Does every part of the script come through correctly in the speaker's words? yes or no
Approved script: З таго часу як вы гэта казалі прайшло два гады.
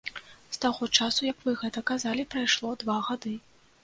yes